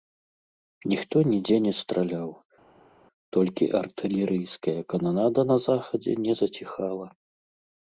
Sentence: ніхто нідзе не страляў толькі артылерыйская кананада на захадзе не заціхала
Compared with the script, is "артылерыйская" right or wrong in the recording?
right